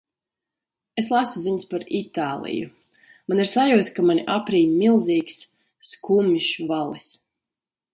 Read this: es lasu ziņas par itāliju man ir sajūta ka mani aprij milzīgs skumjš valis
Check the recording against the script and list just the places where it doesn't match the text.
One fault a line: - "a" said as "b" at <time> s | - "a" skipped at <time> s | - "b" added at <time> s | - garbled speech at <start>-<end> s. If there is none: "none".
none